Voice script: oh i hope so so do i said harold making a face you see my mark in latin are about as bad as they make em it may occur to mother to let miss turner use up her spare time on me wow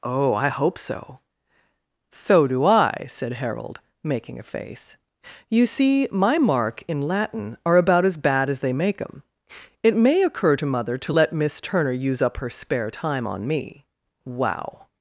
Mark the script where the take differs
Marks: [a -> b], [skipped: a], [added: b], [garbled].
oh i hope so so do i said harold making a face you see my mark in latin are about as bad as they make em it may occur to mother to let miss turner use up her spare time on me wow